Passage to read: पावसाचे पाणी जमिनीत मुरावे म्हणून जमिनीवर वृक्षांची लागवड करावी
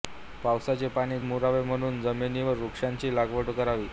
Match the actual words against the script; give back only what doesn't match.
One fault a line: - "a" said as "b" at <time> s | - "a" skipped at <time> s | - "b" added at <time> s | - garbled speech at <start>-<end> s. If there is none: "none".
- "जमिनीत" skipped at 1.2 s